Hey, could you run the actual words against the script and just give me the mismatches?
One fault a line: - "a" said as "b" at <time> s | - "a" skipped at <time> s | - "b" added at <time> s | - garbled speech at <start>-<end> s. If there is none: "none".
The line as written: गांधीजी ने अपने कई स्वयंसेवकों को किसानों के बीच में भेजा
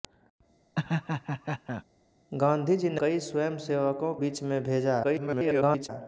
- "अपने" skipped at 3.0 s
- "को किसानों के" skipped at 4.1 s
- garbled speech at 5.0-5.9 s